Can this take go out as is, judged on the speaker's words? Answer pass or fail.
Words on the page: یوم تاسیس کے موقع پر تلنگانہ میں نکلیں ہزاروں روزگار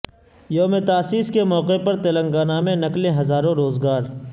pass